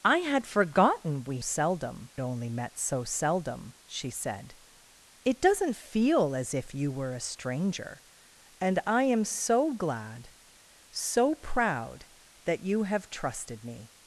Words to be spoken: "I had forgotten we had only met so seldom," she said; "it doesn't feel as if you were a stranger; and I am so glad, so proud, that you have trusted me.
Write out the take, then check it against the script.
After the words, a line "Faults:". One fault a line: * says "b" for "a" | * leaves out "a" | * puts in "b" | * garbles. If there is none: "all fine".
"I had forgotten we seldom only met so seldom," she said; "it doesn't feel as if you were a stranger; and I am so glad, so proud, that you have trusted me.
Faults:
* says "seldom" for "had"